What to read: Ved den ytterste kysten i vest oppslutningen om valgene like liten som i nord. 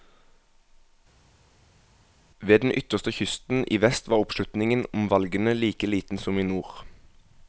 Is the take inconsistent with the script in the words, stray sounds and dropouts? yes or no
yes